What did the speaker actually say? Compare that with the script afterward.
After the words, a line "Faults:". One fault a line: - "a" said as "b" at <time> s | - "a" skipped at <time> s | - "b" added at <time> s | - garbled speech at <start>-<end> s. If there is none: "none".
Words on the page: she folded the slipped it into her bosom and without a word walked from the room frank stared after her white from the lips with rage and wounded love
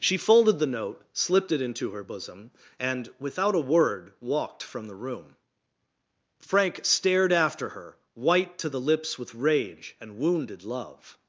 she folded the note slipped it into her bosom and without a word walked from the room frank stared after her white to the lips with rage and wounded love
Faults:
- "note" added at 0.7 s
- "from" said as "to" at 8.6 s